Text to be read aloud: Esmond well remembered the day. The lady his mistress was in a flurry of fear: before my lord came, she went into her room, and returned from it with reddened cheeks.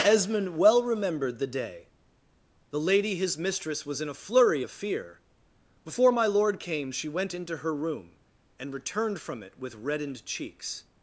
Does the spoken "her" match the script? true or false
true